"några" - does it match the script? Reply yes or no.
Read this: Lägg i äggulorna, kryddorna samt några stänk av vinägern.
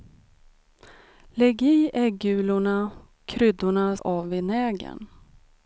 no